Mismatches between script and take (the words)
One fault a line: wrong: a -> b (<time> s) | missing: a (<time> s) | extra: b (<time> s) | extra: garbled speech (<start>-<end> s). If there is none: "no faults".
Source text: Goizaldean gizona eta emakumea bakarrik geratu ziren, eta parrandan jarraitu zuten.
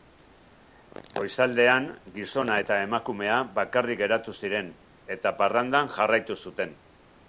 no faults